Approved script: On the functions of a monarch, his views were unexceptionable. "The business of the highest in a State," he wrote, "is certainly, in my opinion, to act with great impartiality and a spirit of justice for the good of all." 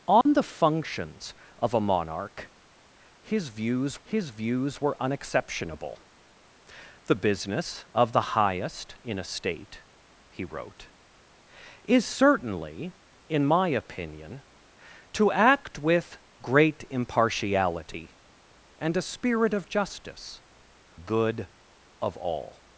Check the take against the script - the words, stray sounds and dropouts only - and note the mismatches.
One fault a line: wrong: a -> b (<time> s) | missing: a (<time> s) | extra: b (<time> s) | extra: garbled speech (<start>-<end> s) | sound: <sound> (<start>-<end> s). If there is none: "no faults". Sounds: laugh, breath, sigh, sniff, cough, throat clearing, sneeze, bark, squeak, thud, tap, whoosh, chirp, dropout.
sound: dropout (0.2-0.3 s)
extra: his views (4.0 s)
missing: for the (20.4 s)